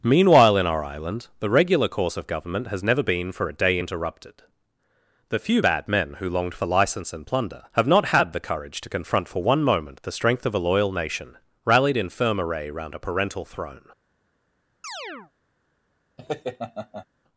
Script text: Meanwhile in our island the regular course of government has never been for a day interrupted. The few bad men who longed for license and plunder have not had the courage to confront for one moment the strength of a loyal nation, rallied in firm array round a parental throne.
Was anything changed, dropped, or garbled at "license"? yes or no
no